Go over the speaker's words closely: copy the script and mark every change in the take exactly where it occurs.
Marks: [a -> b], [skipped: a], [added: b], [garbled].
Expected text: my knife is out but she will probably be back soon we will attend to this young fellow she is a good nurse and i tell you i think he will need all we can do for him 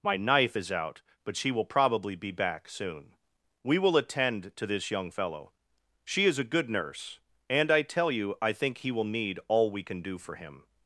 my knife is out but she will probably be back soon we will attend to this young fellow she is a good nurse and i tell you i think he will need all we can do for him